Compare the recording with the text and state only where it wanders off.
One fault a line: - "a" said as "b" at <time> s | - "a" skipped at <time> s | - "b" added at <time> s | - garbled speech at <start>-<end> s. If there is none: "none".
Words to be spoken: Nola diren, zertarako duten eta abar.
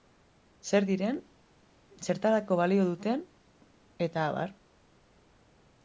- "Nola" said as "Zer" at 0.7 s
- "balio" added at 2.6 s